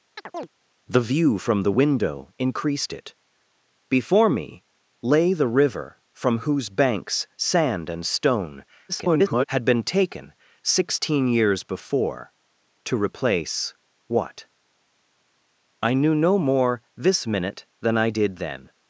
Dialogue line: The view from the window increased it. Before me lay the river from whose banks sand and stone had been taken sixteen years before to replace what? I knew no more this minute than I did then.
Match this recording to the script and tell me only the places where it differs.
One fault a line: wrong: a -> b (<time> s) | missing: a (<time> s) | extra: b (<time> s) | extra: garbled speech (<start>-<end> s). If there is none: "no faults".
extra: garbled speech (8.9-9.4 s)